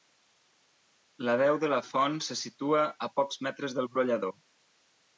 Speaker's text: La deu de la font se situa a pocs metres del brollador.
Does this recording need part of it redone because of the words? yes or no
no